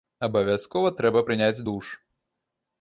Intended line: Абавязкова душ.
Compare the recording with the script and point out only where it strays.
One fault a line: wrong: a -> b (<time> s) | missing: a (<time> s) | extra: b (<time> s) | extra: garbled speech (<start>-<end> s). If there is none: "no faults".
extra: трэба прыняць (1.0 s)